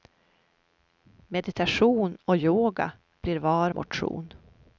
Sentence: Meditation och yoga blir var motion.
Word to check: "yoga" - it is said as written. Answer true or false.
true